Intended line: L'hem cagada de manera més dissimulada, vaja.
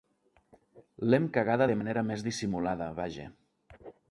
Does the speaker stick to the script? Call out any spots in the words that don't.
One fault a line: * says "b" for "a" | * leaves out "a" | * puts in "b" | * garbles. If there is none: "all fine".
all fine